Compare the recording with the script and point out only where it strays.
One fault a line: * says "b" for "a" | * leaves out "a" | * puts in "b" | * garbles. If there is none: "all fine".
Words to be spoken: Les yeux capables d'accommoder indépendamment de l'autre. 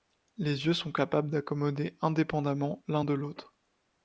* puts in "sont"
* puts in "l'un"